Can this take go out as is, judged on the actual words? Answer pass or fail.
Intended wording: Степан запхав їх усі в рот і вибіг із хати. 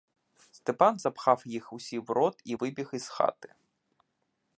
pass